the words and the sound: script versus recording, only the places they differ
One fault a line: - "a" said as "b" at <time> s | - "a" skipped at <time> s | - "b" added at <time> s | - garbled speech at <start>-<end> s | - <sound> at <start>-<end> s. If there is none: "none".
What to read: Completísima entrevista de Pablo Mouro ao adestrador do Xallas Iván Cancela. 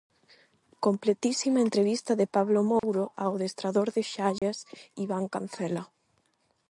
- dropout at 2.8-2.8 s
- dropout at 4.4-4.4 s